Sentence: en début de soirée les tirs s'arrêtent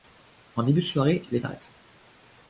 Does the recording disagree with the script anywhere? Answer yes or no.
yes